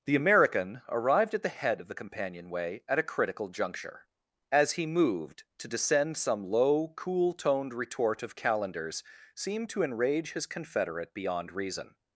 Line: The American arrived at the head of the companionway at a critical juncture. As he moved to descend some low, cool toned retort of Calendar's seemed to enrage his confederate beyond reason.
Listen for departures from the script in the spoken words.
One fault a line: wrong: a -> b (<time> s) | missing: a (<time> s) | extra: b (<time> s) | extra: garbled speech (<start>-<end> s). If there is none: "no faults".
no faults